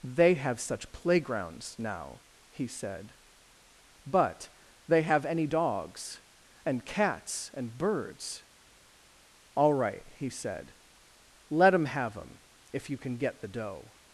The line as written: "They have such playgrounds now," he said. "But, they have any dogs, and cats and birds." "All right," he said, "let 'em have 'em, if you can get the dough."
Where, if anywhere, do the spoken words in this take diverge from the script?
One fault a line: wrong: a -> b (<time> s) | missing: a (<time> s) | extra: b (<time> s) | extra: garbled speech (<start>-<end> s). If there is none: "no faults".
no faults